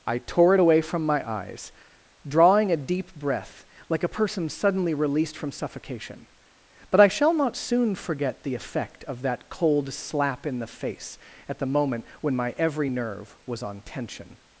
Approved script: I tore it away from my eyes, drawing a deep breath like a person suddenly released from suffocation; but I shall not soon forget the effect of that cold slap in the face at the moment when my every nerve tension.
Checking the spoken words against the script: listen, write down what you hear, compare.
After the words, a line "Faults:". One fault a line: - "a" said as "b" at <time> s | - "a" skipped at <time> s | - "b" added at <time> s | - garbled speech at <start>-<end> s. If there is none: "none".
I tore it away from my eyes, drawing a deep breath like a person suddenly released from suffocation; but I shall not soon forget the effect of that cold slap in the face at the moment when my every nerve was on tension.
Faults:
- "was on" added at 13.5 s